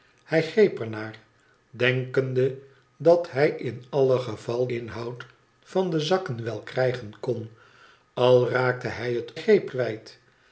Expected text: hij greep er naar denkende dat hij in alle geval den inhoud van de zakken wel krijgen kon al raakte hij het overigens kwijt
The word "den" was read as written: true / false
false